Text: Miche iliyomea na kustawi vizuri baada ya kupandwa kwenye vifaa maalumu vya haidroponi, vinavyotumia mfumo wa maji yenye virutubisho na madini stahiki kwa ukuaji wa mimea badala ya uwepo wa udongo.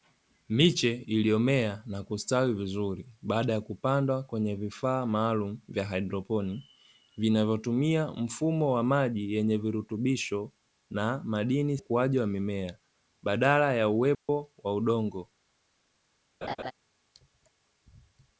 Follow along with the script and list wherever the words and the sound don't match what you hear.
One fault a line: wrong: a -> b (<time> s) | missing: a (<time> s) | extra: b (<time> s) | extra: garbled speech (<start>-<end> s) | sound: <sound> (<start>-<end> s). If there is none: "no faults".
missing: stahiki kwa (11.8 s)
sound: dropout (14.1-14.3 s)
sound: laugh (16.4-16.7 s)